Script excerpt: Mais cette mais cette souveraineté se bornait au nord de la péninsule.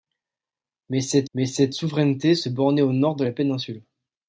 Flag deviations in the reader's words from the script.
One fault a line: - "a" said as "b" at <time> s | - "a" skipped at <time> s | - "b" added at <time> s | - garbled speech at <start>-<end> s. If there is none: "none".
none